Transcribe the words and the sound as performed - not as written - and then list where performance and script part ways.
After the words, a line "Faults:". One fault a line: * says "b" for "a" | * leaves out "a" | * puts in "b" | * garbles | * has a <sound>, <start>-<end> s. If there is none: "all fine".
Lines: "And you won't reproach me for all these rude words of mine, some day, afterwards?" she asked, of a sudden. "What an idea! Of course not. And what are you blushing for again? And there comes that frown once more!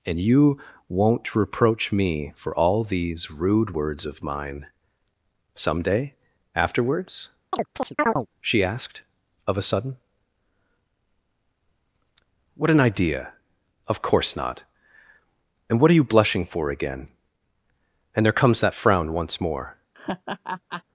"And you won't reproach me for all these rude words of mine, some day, afterwards?" she asked, of a sudden. "What an idea! Of course not. And what are you blushing for again? And there comes that frown once more!
Faults:
* has a chirp, 7.5-8.3 s
* has a laugh, 19.9-20.8 s